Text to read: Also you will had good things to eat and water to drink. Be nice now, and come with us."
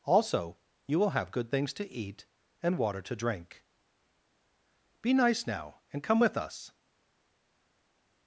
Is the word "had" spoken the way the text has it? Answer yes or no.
no